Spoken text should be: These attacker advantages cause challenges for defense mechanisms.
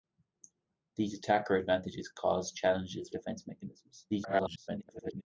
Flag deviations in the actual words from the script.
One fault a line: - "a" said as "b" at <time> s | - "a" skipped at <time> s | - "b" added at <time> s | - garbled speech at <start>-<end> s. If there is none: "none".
- "for" skipped at 3.1 s
- garbled speech at 4.1-5.2 s